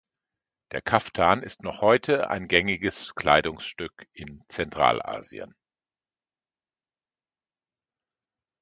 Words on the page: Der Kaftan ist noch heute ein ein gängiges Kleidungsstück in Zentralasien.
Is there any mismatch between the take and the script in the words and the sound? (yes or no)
yes